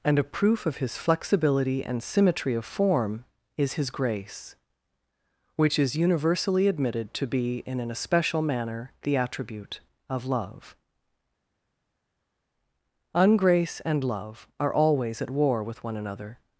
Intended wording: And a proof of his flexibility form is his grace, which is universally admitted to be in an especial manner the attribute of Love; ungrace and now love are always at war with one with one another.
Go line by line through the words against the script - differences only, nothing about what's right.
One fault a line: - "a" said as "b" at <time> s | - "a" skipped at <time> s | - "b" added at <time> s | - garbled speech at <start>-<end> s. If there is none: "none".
- "and symmetry of" added at 1.8 s
- "now" skipped at 14.0 s
- "with one" skipped at 16.0 s